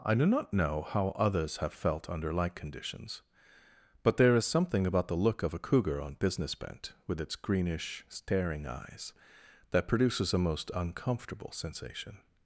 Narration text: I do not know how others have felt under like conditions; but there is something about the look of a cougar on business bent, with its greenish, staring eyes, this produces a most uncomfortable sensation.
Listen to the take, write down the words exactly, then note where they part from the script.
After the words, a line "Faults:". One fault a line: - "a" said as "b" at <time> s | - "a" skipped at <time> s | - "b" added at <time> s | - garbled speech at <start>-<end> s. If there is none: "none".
I do not know how others have felt under like conditions; but there is something about the look of a cougar on business bent, with its greenish, staring eyes, that produces a most uncomfortable sensation.
Faults:
- "this" said as "that" at 9.7 s